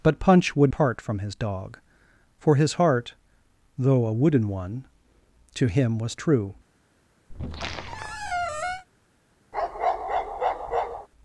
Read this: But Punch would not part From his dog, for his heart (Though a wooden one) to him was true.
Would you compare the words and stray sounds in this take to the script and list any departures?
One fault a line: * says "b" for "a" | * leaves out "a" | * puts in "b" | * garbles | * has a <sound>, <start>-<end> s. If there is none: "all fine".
* leaves out "not"
* has a squeak, 7.3-8.9 s
* has a bark, 9.5-11.1 s